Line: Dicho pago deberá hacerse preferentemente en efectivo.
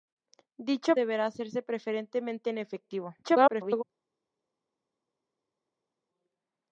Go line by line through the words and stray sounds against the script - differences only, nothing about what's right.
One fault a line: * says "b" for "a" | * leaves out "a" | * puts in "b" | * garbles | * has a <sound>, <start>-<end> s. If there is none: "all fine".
* leaves out "pago"
* garbles